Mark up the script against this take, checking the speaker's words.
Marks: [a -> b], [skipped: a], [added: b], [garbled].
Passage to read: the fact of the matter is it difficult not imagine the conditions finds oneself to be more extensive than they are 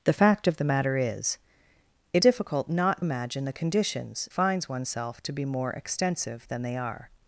the fact of the matter is it difficult not imagine the conditions finds oneself to be more extensive than they are